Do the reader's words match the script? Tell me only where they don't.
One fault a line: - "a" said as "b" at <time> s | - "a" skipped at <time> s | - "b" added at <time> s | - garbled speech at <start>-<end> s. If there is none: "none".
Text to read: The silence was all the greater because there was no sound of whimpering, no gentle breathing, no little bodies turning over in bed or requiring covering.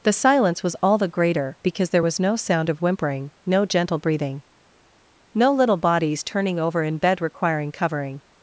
- "or" skipped at 7.2 s